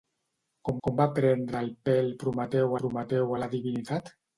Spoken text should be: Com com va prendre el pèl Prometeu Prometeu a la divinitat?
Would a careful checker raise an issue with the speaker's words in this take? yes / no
no